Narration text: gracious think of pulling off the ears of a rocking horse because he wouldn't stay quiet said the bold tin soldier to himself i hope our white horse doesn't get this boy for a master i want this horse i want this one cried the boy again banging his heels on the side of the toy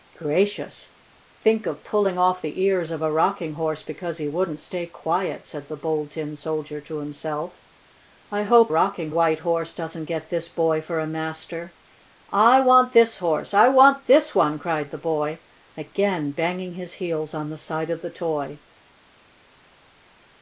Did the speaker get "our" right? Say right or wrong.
wrong